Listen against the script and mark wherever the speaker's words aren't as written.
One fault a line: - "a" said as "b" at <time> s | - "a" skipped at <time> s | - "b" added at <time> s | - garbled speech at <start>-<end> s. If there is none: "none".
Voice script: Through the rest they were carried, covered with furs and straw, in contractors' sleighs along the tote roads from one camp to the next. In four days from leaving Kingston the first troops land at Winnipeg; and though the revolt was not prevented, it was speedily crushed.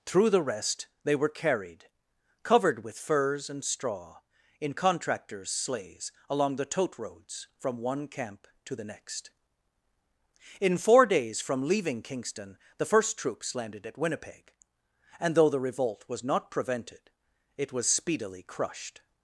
- "land" said as "landed" at 13.5 s